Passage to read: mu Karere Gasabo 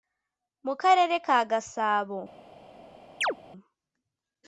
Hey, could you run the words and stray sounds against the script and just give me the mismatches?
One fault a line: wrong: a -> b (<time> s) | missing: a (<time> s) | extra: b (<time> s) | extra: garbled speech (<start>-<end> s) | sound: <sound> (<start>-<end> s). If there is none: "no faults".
extra: ka (1.2 s)
sound: chirp (3.2-3.4 s)